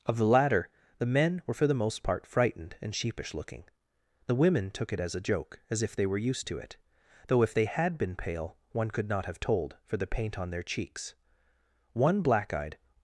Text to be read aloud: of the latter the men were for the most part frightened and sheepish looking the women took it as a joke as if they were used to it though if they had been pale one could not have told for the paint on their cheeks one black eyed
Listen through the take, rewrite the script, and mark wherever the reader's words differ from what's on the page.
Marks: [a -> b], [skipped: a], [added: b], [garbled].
of the latter the men were for the most part frightened and sheepish looking the women took it as a joke as if they were used to it though if they had been pale one could not have told for the paint on their cheeks one black eyed